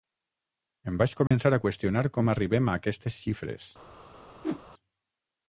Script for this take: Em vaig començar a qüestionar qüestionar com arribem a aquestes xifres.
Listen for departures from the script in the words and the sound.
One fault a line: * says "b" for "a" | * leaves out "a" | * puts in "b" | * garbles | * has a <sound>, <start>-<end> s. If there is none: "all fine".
* has a dropout, 1.3-1.3 s
* leaves out "qüestionar"
* has a whoosh, 4.4-4.6 s